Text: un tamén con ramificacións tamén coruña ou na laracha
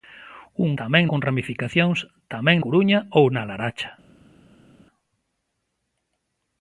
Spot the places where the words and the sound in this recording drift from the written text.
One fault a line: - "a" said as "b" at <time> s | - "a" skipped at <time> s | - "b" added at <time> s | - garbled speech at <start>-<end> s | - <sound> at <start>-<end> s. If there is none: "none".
none